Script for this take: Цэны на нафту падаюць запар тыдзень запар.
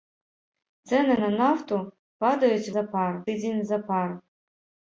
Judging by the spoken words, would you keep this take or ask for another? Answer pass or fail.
pass